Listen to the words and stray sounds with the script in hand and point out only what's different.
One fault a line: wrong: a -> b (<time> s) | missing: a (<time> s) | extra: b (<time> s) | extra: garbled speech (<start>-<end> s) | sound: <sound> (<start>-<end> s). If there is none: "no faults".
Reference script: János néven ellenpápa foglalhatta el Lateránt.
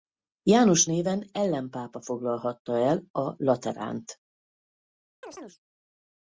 extra: a (3.1 s)
sound: chirp (5.2-5.6 s)